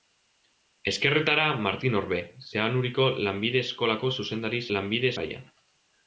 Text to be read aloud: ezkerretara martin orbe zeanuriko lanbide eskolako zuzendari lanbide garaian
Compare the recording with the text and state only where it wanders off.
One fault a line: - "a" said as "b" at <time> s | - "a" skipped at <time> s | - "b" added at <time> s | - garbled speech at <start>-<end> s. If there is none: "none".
none